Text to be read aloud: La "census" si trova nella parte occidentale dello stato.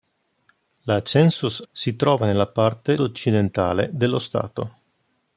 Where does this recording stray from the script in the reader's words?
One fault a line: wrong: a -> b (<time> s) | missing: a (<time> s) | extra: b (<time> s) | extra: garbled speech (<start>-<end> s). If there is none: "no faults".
no faults